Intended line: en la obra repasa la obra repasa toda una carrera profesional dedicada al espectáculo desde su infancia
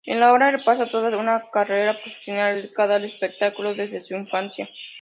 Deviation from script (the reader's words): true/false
true